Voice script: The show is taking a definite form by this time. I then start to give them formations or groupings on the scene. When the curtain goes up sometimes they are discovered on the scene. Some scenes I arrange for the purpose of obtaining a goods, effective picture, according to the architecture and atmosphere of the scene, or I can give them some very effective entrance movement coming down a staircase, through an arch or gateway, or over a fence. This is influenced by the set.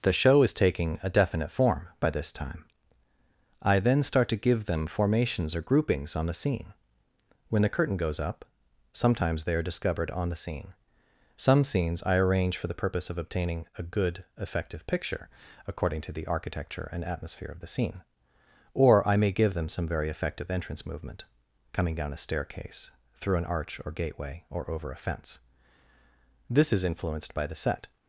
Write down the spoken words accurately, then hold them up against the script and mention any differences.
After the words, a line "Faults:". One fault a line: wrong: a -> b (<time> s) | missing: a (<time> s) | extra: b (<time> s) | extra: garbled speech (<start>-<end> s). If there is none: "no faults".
The show is taking a definite form by this time. I then start to give them formations or groupings on the scene. When the curtain goes up sometimes they are discovered on the scene. Some scenes I arrange for the purpose of obtaining a good, effective picture, according to the architecture and atmosphere of the scene, or I may give them some very effective entrance movement coming down a staircase, through an arch or gateway, or over a fence. This is influenced by the set.
Faults:
wrong: goods -> good (13.8 s)
wrong: can -> may (19.2 s)